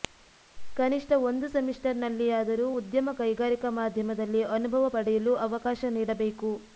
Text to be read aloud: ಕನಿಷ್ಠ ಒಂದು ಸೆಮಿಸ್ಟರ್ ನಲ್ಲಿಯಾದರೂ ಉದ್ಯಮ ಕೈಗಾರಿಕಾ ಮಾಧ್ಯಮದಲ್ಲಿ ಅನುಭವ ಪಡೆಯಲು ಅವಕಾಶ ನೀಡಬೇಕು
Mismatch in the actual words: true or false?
false